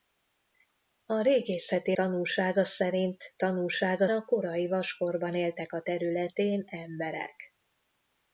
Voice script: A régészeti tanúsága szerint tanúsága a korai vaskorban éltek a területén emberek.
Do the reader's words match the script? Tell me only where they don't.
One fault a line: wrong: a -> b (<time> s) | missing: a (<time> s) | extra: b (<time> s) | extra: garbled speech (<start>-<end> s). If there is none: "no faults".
no faults